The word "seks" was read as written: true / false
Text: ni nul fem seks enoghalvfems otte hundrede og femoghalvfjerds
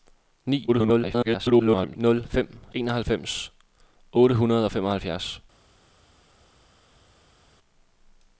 false